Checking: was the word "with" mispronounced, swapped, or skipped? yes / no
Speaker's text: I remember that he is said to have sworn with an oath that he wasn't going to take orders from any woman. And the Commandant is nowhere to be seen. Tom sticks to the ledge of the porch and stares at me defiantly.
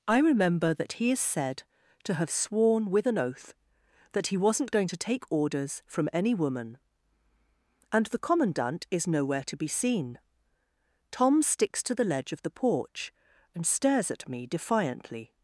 no